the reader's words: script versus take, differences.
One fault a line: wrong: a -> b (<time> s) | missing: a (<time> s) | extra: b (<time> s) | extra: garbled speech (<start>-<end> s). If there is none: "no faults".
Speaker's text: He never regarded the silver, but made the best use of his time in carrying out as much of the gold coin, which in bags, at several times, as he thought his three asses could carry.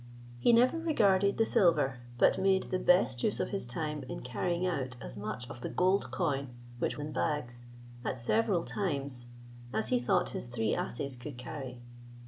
no faults